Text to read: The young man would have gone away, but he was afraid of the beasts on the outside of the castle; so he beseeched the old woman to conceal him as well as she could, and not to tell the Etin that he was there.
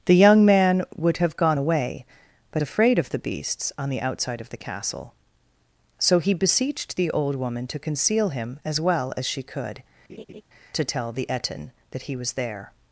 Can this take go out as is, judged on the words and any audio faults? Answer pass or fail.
fail